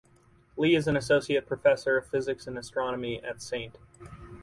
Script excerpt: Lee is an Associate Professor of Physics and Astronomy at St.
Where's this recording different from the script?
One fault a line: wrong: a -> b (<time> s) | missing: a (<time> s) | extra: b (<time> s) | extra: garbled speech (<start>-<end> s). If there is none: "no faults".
no faults